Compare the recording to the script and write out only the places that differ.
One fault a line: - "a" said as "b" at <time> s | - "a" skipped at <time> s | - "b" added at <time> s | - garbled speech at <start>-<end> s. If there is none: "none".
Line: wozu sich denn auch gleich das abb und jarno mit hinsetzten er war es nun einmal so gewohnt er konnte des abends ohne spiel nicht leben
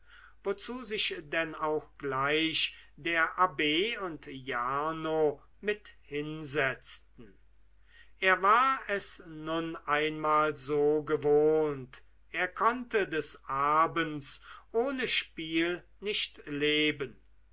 - "das" said as "der" at 2.9 s